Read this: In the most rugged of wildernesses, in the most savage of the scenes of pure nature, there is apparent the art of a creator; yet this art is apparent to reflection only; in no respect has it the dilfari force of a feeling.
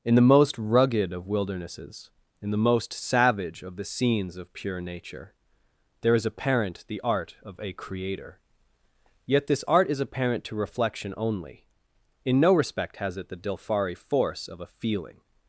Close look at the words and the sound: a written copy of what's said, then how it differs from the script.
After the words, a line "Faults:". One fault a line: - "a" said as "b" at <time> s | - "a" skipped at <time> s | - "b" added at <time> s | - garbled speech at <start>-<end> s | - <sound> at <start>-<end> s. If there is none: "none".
In the most rugged of wildernesses, in the most savage of the scenes of pure nature, there is apparent the art of a creator; yet this art is apparent to reflection only; in no respect has it the dilfari force of a feeling.
Faults:
none